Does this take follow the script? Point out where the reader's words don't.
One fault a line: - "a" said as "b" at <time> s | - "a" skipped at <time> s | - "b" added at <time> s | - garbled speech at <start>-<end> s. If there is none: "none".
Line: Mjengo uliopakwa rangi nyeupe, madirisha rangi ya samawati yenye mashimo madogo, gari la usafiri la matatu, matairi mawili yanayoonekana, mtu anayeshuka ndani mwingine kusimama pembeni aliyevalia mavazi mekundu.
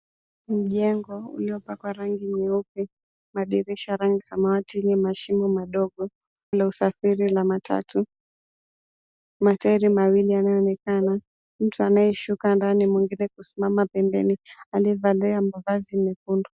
- "ya" skipped at 4.2 s
- "gari" skipped at 6.1 s